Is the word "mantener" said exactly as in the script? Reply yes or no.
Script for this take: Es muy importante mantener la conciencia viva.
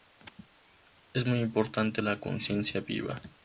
no